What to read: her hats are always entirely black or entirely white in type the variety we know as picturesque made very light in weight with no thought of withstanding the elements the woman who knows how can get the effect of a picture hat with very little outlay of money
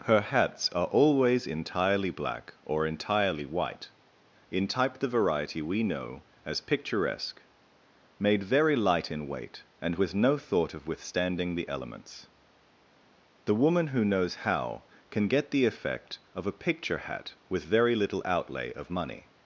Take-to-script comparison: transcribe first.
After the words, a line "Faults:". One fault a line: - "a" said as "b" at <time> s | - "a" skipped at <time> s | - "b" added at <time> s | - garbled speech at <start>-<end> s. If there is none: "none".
her hats are always entirely black or entirely white in type the variety we know as picturesque made very light in weight and with no thought of withstanding the elements the woman who knows how can get the effect of a picture hat with very little outlay of money
Faults:
- "and" added at 9.8 s